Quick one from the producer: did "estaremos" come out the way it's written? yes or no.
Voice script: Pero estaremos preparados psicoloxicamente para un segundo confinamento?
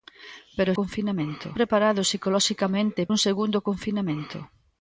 no